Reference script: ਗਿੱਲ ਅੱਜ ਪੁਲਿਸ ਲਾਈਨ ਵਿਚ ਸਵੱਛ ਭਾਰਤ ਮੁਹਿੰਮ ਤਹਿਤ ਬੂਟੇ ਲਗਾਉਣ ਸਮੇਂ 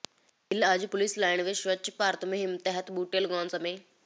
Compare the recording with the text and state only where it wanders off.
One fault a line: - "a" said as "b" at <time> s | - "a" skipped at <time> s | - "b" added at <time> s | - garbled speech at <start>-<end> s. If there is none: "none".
none